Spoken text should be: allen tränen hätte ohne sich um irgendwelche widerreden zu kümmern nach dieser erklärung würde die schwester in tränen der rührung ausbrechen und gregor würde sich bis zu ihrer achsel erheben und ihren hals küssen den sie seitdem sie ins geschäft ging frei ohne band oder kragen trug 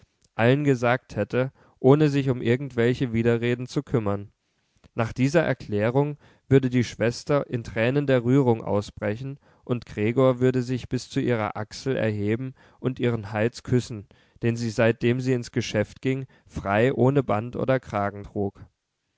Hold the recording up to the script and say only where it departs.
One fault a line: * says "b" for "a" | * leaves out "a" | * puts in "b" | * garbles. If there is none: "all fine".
* says "gesagt" for "tränen"